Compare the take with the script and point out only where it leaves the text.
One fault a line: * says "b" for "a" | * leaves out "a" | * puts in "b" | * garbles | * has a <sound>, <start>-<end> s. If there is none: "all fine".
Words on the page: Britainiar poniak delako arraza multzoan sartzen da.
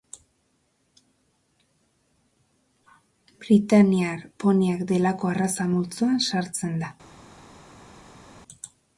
all fine